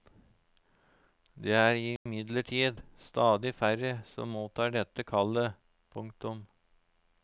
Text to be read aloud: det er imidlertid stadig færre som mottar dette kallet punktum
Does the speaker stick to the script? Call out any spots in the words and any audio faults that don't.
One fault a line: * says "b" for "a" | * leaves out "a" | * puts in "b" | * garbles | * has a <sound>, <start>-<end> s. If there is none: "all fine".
* has a dropout, 2.0-2.1 s